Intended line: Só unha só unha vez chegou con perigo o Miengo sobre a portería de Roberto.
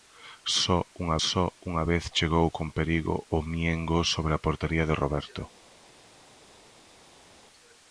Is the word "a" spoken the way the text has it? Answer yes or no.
yes